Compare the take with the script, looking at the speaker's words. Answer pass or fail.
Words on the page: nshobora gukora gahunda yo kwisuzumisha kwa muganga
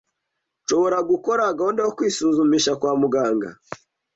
pass